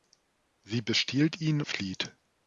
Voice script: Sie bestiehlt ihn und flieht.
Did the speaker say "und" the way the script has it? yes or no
no